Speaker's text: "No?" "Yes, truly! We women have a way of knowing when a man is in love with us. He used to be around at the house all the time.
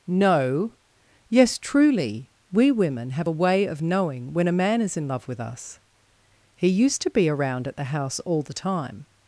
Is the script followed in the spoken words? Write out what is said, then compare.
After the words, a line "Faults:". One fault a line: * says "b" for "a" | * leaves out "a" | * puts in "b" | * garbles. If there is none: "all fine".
"No?" "Yes, truly! We women have a way of knowing when a man is in love with us. He used to be around at the house all the time.
Faults:
all fine